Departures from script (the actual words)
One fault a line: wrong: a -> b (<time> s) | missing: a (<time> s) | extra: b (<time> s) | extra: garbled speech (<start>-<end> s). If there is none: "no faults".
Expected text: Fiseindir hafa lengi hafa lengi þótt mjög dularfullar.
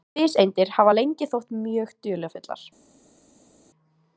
missing: hafa lengi (1.3 s)